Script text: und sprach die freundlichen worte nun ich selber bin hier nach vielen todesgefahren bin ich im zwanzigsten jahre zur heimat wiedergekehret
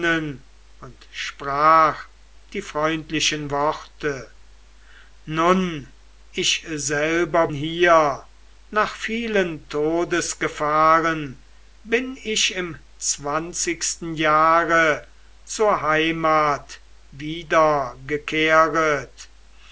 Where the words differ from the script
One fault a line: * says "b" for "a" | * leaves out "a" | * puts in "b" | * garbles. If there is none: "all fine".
* leaves out "bin"